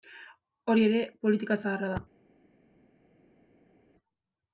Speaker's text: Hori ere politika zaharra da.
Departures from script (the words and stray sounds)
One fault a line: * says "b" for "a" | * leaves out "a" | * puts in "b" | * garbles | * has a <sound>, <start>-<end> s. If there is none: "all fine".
all fine